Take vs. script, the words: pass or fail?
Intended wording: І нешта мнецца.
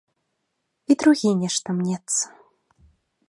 fail